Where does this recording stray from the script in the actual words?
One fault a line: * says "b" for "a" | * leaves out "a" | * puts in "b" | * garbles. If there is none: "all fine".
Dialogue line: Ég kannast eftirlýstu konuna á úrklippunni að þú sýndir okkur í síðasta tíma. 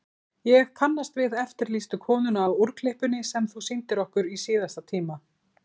* puts in "við"
* says "sem" for "að"